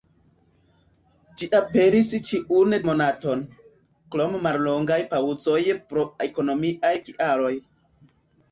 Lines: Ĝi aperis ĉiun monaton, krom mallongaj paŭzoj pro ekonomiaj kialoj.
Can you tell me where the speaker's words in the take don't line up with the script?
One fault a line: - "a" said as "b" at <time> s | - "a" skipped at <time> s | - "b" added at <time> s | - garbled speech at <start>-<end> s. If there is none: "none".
none